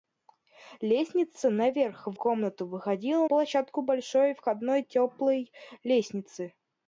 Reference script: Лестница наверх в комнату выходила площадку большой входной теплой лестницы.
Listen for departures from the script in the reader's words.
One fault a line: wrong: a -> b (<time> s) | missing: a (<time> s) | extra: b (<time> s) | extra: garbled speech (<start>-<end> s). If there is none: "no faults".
no faults